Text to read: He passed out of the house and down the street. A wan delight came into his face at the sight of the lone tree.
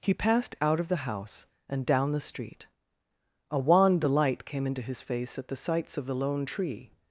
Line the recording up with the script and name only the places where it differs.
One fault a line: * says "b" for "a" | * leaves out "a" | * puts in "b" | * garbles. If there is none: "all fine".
* says "sights" for "sight"